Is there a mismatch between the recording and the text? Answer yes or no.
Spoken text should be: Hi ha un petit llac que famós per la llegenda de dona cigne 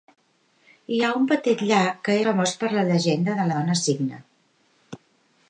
no